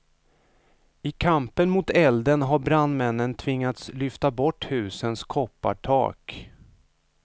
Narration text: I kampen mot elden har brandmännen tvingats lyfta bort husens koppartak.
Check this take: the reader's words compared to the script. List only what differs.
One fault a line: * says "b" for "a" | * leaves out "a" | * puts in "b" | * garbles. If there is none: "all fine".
all fine